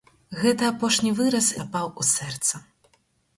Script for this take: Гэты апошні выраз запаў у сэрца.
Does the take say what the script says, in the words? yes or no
yes